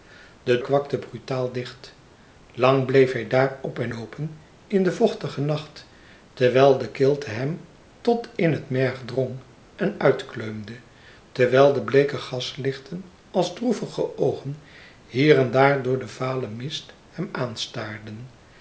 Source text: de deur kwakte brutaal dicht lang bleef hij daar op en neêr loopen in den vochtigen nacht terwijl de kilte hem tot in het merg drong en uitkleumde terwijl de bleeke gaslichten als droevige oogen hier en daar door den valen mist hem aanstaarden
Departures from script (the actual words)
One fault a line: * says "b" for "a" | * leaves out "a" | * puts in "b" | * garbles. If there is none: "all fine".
* leaves out "deur"
* leaves out "neêr"